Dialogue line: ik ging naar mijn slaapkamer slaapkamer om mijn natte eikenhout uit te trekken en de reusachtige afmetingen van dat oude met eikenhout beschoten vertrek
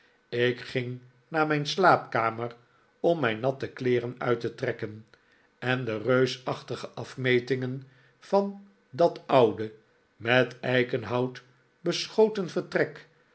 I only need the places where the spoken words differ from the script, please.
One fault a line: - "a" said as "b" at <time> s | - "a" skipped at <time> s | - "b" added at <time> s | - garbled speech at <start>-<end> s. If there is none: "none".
- "slaapkamer" skipped at 2.5 s
- "eikenhout" said as "kleeren" at 3.7 s